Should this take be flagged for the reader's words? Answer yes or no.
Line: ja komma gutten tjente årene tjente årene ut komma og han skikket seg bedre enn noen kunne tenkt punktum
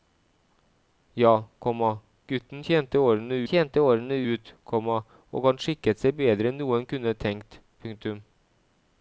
no